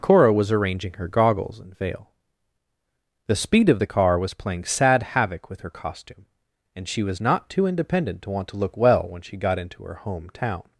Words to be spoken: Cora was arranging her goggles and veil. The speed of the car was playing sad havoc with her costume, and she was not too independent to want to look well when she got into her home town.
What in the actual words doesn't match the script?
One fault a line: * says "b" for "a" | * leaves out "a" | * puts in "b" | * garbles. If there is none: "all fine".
all fine